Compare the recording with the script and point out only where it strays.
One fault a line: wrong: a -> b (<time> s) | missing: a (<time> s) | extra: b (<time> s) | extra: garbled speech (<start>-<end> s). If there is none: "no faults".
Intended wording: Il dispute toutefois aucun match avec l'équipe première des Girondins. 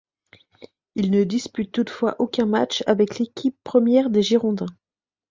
extra: ne (1.1 s)